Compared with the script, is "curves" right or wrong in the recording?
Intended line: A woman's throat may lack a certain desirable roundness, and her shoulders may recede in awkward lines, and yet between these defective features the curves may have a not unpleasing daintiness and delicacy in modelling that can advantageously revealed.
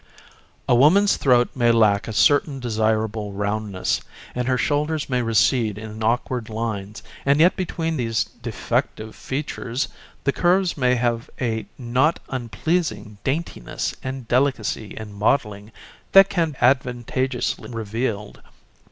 right